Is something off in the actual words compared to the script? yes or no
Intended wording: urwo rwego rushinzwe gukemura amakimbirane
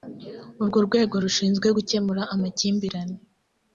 no